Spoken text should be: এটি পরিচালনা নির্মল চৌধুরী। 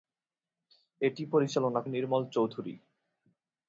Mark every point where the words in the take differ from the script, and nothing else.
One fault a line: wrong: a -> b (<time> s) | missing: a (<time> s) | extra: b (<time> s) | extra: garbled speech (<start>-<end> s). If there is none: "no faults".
no faults